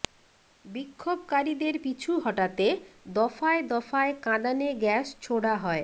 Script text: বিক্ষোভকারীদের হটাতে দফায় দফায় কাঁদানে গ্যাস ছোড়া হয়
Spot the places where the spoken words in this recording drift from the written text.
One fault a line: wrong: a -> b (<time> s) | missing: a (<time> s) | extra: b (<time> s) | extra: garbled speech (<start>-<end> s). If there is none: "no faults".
extra: পিছু (1.8 s)